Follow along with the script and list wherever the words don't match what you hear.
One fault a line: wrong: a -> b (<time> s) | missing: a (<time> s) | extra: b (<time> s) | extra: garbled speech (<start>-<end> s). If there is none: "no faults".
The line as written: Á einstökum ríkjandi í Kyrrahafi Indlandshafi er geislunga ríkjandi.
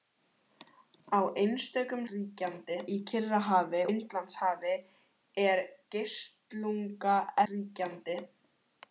no faults